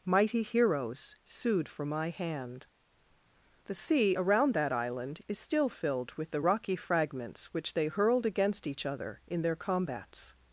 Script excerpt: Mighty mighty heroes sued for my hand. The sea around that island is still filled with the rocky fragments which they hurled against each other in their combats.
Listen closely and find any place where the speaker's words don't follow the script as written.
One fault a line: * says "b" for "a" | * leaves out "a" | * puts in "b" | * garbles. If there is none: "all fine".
* leaves out "mighty"